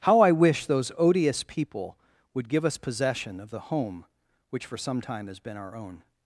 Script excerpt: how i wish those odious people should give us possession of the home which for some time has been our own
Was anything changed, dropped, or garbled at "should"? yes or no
yes